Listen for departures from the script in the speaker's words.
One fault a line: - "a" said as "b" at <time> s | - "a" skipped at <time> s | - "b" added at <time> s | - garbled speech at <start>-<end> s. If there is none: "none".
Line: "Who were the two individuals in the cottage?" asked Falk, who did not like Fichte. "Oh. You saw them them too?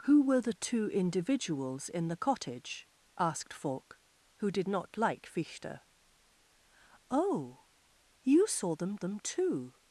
none